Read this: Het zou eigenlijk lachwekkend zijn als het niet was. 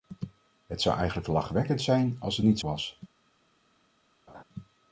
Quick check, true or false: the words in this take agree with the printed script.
true